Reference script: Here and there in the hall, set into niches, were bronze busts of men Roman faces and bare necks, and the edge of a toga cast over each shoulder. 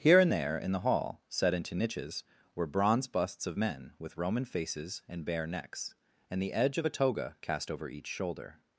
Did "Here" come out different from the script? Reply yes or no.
no